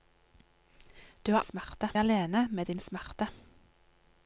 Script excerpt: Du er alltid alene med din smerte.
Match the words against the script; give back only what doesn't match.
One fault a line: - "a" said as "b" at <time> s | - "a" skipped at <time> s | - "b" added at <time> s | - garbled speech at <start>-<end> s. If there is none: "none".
- "alltid" said as "smerte" at 1.4 s